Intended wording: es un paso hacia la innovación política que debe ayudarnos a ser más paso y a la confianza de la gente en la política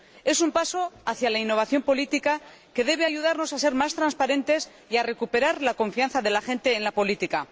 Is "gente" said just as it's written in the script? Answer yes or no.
yes